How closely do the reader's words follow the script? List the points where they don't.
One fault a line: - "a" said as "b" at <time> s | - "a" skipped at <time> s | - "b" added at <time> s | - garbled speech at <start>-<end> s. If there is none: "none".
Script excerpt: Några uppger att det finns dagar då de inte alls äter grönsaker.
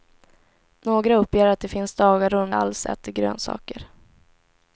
- "inte" skipped at 2.5 s